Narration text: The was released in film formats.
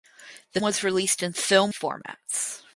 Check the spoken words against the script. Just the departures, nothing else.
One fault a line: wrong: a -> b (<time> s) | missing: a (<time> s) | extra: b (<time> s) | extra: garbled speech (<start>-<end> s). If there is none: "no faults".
no faults